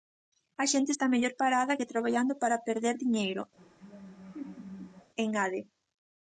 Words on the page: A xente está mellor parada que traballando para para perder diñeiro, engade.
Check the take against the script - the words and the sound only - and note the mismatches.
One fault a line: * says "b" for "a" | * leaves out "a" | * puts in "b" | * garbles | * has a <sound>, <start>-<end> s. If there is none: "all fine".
* leaves out "para"
* has a laugh, 3.6-5.1 s